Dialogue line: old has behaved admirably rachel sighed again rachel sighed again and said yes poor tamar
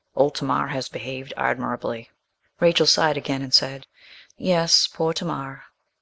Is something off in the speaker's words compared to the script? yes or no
yes